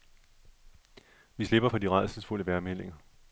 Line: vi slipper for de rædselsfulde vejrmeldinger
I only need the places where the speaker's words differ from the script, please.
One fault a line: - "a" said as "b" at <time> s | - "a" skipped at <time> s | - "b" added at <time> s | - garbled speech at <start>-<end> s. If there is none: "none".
none